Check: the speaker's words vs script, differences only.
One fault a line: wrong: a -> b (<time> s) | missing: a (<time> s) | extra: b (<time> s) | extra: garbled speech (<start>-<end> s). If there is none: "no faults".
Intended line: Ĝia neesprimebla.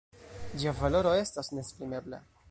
extra: valoro estas (0.8 s)